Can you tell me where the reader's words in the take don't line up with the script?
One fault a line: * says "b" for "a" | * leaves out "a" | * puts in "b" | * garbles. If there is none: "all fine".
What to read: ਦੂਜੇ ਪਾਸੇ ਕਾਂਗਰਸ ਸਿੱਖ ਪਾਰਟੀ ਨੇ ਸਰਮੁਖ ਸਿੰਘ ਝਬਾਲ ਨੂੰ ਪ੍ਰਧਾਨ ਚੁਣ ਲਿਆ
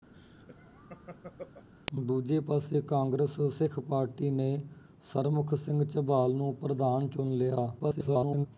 * garbles